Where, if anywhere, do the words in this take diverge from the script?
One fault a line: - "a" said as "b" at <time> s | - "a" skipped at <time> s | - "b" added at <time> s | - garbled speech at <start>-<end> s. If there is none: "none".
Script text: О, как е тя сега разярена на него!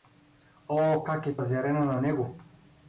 - "тя сега" skipped at 1.4 s